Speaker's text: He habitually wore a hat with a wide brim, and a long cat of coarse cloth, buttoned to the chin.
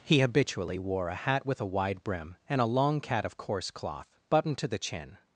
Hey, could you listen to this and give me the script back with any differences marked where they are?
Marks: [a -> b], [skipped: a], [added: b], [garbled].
He habitually wore a hat with a wide brim, and a long cat of coarse cloth, buttoned to the chin.